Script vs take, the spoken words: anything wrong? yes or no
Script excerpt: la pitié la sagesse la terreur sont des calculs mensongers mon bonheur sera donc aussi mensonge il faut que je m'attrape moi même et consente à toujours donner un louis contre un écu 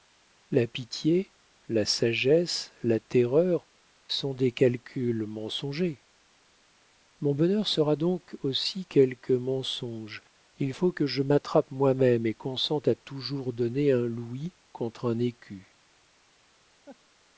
yes